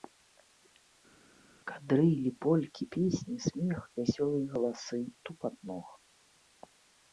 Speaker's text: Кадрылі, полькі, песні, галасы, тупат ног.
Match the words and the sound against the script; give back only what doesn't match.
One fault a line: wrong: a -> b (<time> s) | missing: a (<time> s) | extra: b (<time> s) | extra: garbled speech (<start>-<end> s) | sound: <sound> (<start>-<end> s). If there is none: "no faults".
extra: смех вясёлыя (3.5 s)